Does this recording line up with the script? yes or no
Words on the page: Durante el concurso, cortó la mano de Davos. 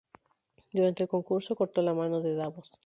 yes